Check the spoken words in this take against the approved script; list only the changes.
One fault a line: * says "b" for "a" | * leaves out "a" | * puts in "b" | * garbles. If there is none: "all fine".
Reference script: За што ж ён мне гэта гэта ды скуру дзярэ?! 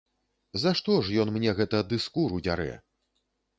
* leaves out "гэта"